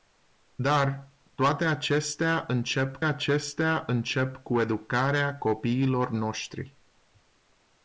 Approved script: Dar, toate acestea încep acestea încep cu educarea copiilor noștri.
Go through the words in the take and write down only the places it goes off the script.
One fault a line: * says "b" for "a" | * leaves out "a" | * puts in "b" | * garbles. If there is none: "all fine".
all fine